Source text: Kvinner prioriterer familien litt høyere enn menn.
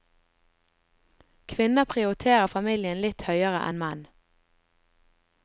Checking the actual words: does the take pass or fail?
pass